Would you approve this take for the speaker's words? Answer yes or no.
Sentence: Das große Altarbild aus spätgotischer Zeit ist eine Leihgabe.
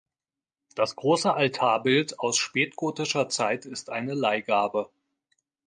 yes